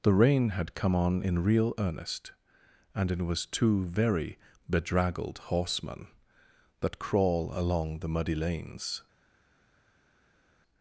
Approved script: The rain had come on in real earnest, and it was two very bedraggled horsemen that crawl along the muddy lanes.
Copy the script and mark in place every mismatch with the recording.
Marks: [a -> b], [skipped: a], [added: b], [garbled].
The rain had come on in real earnest, and it was two very bedraggled horsemen that crawl along the muddy lanes.